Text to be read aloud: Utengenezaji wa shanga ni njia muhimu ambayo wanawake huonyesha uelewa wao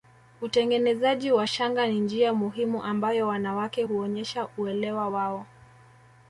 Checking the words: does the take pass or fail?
pass